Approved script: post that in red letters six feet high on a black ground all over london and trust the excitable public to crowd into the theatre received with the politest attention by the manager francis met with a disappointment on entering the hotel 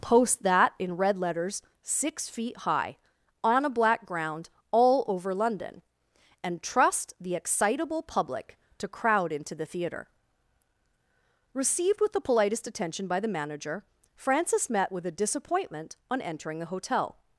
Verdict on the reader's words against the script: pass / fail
pass